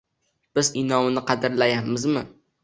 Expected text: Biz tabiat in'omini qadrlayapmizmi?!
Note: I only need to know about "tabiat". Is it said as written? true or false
false